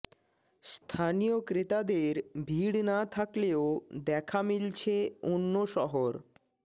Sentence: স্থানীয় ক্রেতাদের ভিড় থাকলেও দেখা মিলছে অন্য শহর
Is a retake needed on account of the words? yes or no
yes